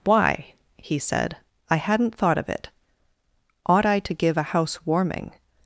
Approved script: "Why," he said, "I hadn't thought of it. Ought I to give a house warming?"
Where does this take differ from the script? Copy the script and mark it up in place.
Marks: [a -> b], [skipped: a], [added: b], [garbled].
"Why," he said, "I hadn't thought of it. Ought I to give a house warming?"